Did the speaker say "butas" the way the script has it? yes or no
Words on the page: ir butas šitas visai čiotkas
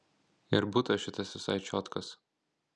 yes